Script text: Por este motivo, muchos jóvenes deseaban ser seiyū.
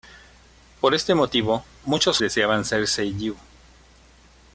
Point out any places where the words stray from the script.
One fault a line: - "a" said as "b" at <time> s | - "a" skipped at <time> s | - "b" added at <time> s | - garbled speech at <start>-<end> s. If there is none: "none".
- "jóvenes" skipped at 2.2 s